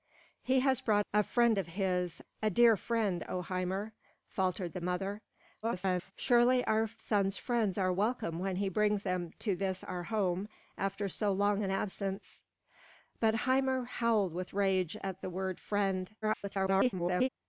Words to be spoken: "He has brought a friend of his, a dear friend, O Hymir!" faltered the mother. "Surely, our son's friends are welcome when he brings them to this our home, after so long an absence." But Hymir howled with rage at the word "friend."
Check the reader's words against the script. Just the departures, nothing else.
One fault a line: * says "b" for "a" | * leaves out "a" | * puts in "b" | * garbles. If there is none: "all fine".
* garbles
* garbles